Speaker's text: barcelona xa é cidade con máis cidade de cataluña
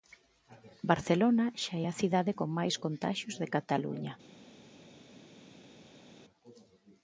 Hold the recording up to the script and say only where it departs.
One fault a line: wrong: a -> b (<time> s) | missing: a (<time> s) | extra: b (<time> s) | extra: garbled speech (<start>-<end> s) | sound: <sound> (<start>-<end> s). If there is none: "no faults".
extra: a (1.9 s)
wrong: cidade -> contaxios (2.8 s)